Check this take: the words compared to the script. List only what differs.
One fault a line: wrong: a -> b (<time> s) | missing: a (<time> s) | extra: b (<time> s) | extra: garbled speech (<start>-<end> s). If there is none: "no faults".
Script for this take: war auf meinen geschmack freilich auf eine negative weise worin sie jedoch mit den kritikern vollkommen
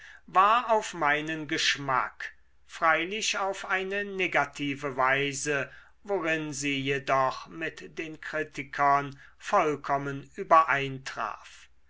no faults